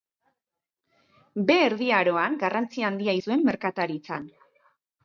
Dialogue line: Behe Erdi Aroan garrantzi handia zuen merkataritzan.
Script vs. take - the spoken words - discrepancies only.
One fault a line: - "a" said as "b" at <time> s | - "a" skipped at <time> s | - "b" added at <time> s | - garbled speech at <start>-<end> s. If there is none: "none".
none